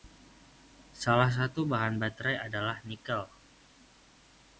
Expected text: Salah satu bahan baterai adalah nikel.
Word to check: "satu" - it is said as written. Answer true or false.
true